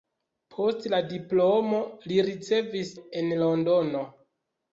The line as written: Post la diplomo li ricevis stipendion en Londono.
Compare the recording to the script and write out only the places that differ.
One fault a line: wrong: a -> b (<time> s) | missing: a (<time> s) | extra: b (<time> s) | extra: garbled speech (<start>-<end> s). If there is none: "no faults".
missing: stipendion (3.0 s)